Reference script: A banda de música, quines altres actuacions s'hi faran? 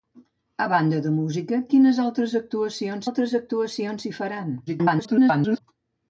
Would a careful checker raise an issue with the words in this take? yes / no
yes